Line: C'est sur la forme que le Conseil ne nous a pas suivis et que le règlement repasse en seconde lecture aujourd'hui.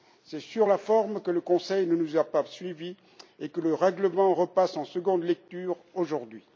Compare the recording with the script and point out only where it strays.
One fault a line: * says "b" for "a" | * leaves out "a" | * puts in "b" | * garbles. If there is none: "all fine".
all fine